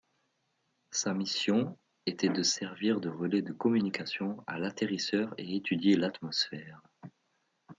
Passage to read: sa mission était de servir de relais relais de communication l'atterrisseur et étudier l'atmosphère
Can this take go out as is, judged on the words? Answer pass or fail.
fail